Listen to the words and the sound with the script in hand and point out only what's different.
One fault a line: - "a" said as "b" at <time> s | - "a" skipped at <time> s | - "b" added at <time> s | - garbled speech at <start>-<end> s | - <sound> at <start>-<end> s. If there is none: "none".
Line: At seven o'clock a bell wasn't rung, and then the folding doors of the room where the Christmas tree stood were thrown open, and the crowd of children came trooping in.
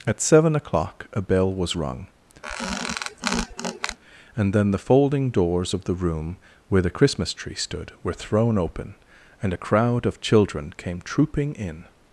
- "wasn't" said as "was" at 1.5 s
- squeak at 2.4-4.0 s
- "the" said as "a" at 9.5 s